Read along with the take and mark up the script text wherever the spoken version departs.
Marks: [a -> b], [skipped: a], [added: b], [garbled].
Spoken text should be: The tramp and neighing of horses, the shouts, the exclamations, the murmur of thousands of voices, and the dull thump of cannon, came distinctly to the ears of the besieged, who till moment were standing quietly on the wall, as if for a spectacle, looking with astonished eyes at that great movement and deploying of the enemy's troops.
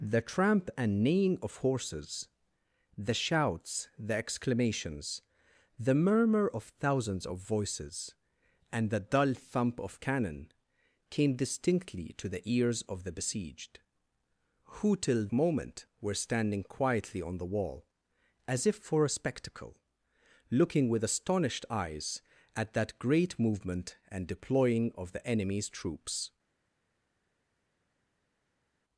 The tramp and neighing of horses, the shouts, the exclamations, the murmur of thousands of voices, and the dull thump of cannon, came distinctly to the ears of the besieged, who till moment were standing quietly on the wall, as if for a spectacle, looking with astonished eyes at that great movement and deploying of the enemy's troops.